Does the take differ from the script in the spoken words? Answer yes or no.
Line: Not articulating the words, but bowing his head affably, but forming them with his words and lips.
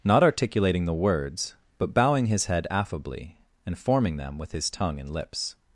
yes